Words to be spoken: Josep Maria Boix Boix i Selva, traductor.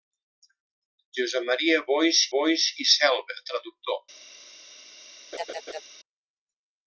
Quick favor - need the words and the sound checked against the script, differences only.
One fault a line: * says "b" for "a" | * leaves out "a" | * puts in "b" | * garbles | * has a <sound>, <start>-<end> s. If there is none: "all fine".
* has a laugh, 5.3-5.8 s